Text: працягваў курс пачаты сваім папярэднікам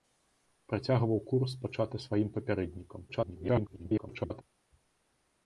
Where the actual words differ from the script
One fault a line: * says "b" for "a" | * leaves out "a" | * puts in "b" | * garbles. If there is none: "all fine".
* garbles